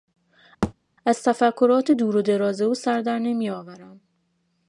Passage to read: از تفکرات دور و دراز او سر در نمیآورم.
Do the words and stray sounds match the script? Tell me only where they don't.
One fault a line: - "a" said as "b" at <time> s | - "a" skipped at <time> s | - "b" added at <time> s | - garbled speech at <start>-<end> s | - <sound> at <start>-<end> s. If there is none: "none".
- thud at 0.6-0.7 s